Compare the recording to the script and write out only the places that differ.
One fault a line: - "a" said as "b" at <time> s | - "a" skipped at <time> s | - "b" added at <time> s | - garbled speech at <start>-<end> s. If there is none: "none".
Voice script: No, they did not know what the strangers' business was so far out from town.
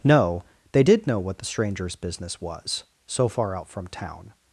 - "not" skipped at 1.1 s